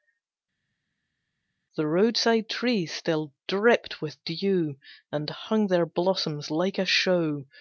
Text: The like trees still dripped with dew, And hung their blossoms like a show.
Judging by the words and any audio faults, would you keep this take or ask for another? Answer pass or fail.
fail